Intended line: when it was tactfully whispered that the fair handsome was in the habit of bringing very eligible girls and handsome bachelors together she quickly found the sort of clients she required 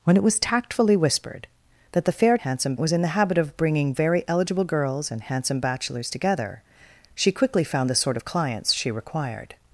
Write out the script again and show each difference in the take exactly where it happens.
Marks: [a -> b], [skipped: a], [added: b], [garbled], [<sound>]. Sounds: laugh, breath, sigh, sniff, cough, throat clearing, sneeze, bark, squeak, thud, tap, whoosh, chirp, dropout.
when it was tactfully whispered that the fair handsome was in the habit of bringing very eligible girls and handsome bachelors together she quickly found the sort of clients she required